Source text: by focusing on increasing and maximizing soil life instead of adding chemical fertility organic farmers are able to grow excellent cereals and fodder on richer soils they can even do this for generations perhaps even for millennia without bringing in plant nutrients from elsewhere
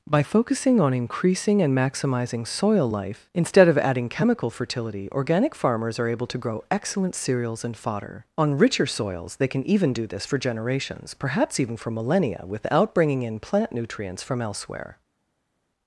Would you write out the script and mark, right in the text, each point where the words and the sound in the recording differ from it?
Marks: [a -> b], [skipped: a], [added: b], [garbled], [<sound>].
by focusing on increasing and maximizing soil life instead of adding chemical fertility organic farmers are able to grow excellent cereals and fodder on richer soils they can even do this for generations perhaps even for millennia without bringing in plant nutrients from elsewhere